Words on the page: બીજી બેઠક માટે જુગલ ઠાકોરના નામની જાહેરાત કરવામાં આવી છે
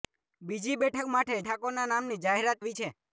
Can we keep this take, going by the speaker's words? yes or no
no